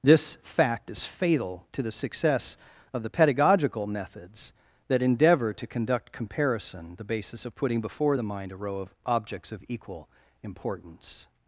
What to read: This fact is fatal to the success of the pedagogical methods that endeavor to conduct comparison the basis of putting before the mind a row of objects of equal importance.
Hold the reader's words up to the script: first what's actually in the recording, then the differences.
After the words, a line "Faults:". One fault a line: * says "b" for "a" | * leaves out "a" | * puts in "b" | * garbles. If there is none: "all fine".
This fact is fatal to the success of the pedagogical methods that endeavor to conduct comparison the basis of putting before the mind a row of objects of equal importance.
Faults:
all fine